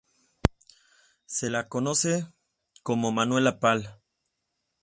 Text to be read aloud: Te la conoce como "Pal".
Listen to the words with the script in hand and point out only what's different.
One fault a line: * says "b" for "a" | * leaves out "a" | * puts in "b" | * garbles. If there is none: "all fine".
* says "Se" for "Te"
* puts in "Manuela"